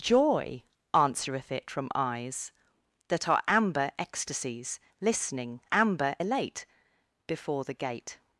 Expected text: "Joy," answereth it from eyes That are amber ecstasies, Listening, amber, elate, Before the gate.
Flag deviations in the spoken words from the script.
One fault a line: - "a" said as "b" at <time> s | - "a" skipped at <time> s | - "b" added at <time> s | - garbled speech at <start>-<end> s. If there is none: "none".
none